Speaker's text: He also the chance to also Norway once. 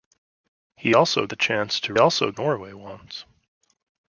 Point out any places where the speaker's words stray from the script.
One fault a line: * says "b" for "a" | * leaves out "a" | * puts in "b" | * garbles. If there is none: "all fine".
all fine